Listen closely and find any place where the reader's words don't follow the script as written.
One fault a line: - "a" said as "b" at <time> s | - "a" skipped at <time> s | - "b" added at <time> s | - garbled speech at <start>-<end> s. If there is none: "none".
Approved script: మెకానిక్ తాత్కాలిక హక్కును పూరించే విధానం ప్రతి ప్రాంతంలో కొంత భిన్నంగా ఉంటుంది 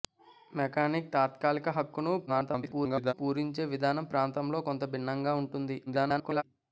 - garbled speech at 2.3-3.1 s
- "ప్రతి" skipped at 4.1 s
- garbled speech at 5.9-6.4 s